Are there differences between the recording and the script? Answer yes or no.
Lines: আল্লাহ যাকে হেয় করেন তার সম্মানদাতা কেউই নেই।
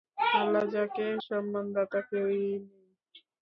yes